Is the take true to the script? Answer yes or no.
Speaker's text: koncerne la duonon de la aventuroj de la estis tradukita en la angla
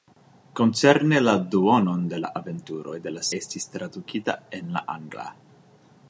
yes